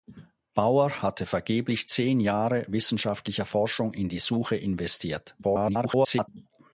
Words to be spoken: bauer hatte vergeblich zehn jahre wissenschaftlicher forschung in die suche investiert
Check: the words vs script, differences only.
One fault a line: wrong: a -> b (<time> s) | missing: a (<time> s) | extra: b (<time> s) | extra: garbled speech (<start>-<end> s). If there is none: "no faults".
extra: garbled speech (5.4-6.3 s)